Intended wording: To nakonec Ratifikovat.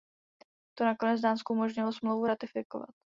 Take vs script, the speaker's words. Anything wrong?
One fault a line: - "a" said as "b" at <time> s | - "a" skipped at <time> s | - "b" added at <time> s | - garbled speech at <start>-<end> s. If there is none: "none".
- "Dánsku umožnilo Smlouvu" added at 1.2 s